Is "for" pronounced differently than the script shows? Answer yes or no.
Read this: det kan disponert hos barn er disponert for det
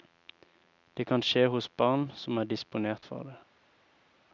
no